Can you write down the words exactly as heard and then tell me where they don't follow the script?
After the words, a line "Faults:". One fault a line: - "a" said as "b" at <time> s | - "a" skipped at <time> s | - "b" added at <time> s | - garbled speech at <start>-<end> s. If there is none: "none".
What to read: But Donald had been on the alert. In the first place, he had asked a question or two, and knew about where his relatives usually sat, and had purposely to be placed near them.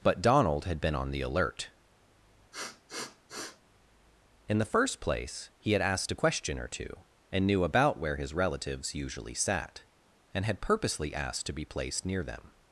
But Donald had been on the alert. In the first place, he had asked a question or two, and knew about where his relatives usually sat, and had purposely asked to be placed near them.
Faults:
- "asked" added at 11.1 s